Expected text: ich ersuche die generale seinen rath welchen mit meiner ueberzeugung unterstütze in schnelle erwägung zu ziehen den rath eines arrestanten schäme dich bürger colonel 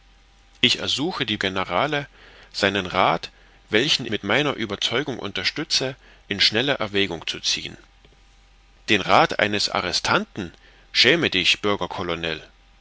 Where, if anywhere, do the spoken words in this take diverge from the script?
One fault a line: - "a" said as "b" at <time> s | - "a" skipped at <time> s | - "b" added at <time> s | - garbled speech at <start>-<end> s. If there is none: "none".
none